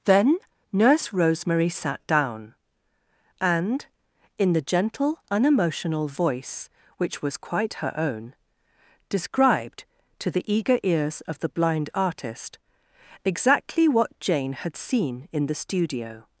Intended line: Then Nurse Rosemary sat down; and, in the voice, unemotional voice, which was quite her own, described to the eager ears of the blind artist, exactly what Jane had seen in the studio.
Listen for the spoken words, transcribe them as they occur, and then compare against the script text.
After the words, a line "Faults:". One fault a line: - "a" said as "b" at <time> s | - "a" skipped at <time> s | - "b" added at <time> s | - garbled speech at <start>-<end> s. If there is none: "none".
Then Nurse Rosemary sat down; and, in the gentle, unemotional voice, which was quite her own, described to the eager ears of the blind artist, exactly what Jane had seen in the studio.
Faults:
- "voice" said as "gentle" at 4.6 s